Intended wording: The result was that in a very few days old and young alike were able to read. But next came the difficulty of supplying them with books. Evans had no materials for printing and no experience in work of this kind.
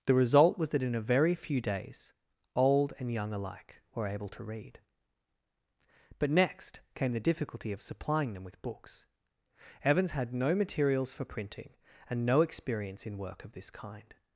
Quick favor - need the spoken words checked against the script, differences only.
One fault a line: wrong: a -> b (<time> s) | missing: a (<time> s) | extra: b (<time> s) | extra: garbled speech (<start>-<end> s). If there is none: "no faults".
no faults